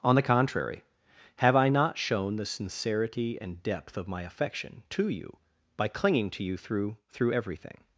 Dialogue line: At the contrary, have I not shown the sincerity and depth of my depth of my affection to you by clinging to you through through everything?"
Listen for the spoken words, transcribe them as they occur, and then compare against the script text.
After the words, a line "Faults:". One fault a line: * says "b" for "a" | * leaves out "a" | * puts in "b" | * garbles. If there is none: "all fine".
On the contrary, have I not shown the sincerity and depth of my affection to you by clinging to you through through everything?"
Faults:
* says "On" for "At"
* leaves out "depth of my"